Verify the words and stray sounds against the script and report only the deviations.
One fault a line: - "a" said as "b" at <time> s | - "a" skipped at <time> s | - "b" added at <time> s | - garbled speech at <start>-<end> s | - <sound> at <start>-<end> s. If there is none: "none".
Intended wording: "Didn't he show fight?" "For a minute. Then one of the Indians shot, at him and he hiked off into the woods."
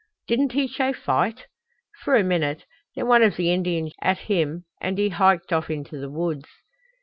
- "shot" skipped at 3.9 s